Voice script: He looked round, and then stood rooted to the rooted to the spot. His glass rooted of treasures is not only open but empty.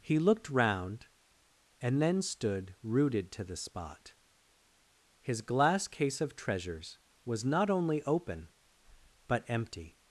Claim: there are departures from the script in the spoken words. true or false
true